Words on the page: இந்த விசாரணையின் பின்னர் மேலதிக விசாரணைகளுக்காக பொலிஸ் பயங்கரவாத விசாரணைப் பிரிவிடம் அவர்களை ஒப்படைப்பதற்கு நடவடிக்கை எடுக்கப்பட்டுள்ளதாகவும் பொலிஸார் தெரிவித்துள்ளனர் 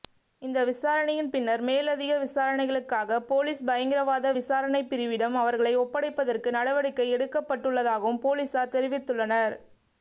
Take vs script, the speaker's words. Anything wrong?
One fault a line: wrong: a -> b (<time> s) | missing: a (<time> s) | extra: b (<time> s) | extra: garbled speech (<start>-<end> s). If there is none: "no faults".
no faults